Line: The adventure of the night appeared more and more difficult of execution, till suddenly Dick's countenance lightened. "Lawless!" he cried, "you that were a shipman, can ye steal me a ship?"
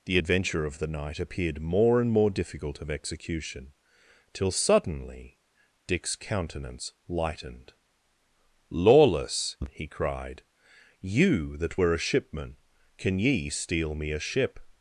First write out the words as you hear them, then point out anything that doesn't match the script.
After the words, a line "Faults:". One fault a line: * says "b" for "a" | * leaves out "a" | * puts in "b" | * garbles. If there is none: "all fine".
The adventure of the night appeared more and more difficult of execution, till suddenly Dick's countenance lightened. "Lawless!" he cried, "you that were a shipman, can ye steal me a ship?"
Faults:
all fine